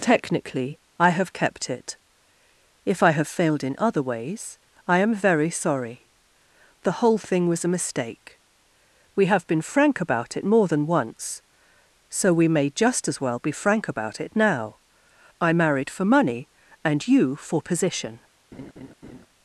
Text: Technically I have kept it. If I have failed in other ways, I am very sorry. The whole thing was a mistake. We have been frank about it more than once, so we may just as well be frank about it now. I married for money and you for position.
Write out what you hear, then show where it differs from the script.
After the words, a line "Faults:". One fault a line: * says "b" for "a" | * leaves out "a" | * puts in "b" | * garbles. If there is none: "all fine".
Technically I have kept it. If I have failed in other ways, I am very sorry. The whole thing was a mistake. We have been frank about it more than once, so we may just as well be frank about it now. I married for money and you for position.
Faults:
all fine